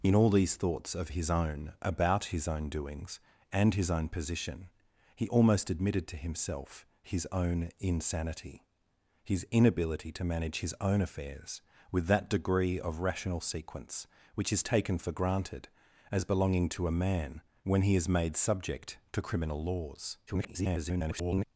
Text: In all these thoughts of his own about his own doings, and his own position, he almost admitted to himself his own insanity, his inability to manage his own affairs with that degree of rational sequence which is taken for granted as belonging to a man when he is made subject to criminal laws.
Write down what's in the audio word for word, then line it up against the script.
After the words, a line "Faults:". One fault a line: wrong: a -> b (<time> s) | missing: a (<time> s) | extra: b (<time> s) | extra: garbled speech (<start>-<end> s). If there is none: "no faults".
In all these thoughts of his own about his own doings, and his own position, he almost admitted to himself his own insanity, his inability to manage his own affairs with that degree of rational sequence which is taken for granted as belonging to a man when he is made subject to criminal laws. [garbled]
Faults:
extra: garbled speech (20.3-21.4 s)